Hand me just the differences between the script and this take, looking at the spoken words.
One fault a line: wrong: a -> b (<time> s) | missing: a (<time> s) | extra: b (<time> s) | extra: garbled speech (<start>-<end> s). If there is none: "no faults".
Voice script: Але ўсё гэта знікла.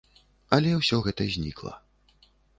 no faults